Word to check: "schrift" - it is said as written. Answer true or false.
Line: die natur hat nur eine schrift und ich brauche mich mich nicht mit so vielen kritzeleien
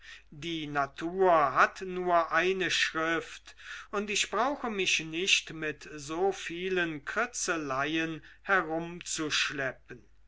true